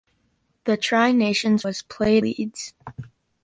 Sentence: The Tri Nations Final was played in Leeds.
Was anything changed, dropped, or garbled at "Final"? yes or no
yes